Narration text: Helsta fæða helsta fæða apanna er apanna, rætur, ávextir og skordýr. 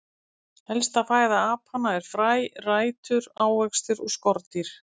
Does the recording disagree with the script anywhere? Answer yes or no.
yes